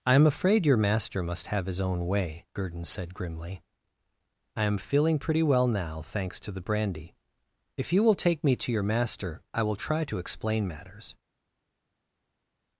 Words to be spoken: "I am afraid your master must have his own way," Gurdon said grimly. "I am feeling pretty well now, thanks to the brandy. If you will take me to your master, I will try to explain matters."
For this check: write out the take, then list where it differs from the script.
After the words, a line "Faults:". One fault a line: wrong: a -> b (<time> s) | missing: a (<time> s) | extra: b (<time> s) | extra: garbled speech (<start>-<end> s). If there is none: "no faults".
"I am afraid your master must have his own way," Gurdon said grimly. "I am feeling pretty well now, thanks to the brandy. If you will take me to your master, I will try to explain matters."
Faults:
no faults